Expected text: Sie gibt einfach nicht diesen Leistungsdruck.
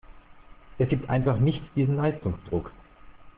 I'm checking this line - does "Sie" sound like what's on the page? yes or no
no